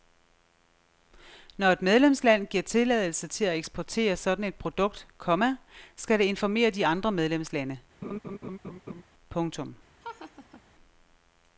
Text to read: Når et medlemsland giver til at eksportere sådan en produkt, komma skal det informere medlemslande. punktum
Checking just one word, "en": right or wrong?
wrong